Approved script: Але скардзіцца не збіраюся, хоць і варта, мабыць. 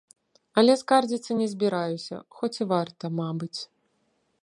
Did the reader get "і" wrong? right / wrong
right